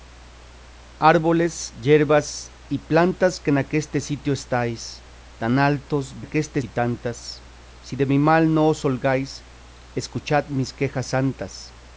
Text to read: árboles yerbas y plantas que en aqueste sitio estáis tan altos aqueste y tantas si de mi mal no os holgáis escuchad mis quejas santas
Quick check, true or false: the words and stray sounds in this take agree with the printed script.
true